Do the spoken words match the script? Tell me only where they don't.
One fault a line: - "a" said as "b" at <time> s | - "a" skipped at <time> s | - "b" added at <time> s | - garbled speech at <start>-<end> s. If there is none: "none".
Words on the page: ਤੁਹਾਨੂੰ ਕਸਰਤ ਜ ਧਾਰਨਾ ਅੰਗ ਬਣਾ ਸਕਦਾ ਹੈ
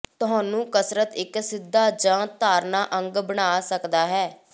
- "ਇੱਕ ਸਿੱਧਾ" added at 1.1 s